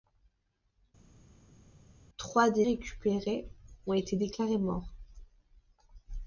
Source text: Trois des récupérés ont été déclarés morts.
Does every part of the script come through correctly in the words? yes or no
yes